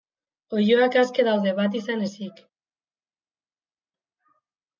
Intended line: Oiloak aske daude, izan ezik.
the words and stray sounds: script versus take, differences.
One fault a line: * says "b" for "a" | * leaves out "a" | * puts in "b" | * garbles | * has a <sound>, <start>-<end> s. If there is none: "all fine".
* puts in "bat"